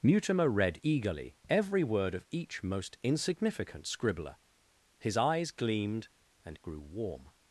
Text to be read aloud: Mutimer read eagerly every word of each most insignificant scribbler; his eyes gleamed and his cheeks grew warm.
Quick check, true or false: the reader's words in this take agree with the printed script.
false